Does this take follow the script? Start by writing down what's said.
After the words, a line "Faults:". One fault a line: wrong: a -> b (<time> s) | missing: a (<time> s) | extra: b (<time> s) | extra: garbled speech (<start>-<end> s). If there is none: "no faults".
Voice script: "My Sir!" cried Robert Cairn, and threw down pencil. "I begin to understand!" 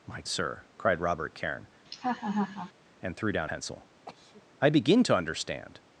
"My Sir!" cried Robert Cairn, and threw down pencil. "I begin to understand!"
Faults:
no faults